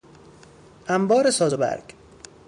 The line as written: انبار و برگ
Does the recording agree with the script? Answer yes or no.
no